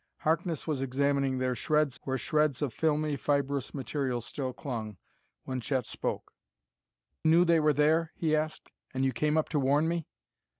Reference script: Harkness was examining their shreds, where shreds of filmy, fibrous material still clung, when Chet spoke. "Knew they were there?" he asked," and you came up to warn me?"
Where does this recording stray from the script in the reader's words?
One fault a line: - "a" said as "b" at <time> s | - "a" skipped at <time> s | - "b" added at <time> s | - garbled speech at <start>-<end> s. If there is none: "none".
none